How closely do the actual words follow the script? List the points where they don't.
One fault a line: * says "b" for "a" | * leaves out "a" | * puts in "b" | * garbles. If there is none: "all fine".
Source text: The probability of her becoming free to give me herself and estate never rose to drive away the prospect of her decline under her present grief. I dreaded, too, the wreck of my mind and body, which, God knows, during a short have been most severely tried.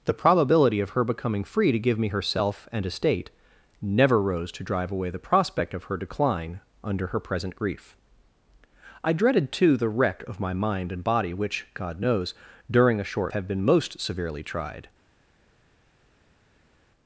all fine